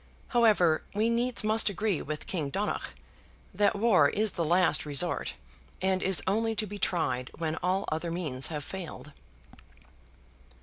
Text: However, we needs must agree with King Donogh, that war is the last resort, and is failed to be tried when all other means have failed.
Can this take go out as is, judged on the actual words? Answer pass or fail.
fail